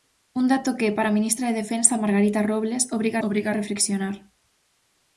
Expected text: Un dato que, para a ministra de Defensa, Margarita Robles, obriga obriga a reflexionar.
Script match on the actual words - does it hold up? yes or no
yes